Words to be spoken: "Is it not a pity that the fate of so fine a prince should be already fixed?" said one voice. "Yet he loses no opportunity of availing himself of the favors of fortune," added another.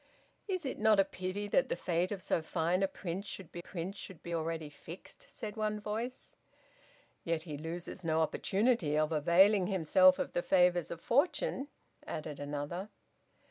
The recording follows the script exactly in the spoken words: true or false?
false